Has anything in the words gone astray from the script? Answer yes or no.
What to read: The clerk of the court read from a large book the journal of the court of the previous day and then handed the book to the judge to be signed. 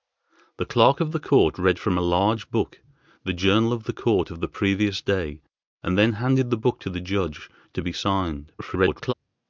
yes